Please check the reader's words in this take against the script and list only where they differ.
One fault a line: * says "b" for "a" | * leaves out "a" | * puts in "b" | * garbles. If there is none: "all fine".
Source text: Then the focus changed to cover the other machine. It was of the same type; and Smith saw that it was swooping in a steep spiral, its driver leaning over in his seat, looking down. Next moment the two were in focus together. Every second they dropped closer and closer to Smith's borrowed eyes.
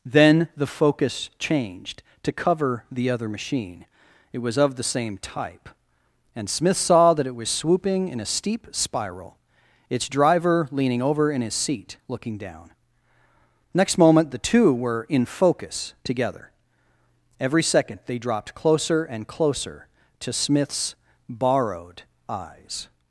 all fine